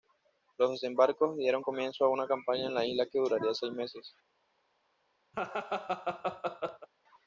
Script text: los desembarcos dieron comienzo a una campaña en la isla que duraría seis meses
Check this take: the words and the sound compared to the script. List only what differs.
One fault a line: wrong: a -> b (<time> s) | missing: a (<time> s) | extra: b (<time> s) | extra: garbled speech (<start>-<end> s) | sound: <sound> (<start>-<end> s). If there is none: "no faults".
sound: laugh (5.3-6.9 s)